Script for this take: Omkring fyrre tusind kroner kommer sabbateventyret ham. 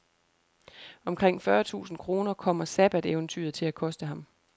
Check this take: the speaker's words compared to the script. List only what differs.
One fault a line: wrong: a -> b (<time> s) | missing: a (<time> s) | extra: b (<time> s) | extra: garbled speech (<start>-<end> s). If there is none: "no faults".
extra: til at koste (3.5 s)